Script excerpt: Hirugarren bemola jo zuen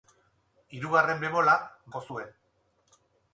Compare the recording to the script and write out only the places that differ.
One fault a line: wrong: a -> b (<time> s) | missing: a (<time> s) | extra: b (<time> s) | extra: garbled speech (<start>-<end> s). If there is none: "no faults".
no faults